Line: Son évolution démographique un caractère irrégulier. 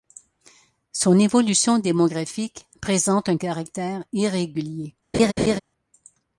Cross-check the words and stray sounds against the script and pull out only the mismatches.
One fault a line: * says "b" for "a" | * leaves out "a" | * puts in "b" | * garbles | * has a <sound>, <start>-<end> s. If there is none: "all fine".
* puts in "présente"
* has a laugh, 5.1-5.6 s